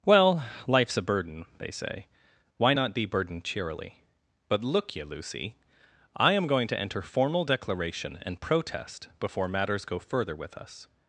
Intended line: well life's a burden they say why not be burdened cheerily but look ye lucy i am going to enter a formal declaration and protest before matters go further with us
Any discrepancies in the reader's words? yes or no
yes